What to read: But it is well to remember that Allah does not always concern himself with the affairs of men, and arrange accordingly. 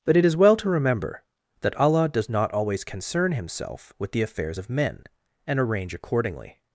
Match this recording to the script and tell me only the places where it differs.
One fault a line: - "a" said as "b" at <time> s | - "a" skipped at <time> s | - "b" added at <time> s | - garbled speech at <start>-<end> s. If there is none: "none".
none